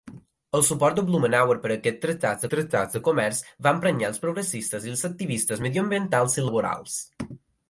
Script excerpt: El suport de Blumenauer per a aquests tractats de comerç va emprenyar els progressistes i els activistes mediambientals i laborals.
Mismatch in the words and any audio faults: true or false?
true